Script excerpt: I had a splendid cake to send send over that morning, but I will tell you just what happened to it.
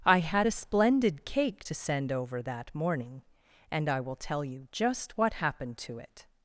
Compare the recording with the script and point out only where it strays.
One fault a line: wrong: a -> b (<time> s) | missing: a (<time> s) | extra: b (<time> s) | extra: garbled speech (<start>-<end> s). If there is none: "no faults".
missing: send (2.1 s)
wrong: but -> and (3.7 s)